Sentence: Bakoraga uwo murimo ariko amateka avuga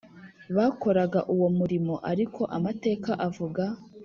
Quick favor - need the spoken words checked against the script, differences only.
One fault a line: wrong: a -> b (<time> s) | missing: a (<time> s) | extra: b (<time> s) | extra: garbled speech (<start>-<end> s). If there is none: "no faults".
no faults